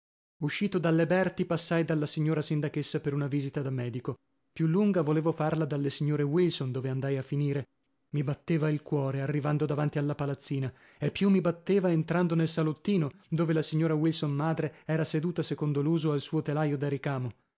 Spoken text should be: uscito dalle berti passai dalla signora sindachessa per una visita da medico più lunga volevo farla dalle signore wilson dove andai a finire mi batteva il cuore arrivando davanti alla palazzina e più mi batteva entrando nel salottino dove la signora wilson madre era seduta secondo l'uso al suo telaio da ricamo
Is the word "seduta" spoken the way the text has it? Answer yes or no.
yes